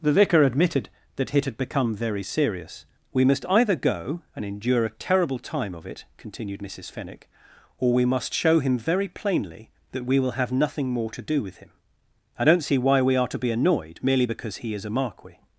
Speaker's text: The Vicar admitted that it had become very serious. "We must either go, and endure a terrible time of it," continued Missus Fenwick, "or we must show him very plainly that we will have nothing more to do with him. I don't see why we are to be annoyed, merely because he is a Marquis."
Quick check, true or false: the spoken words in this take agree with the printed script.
true